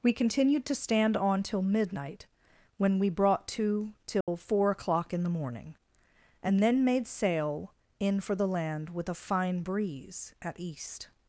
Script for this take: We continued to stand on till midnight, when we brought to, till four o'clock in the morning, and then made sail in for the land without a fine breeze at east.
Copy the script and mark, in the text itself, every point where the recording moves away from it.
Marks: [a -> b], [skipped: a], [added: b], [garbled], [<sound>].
We continued to stand on till midnight, when we brought to, till [dropout] four o'clock in the morning, and then made sail in for the land [without -> with] a fine breeze at east.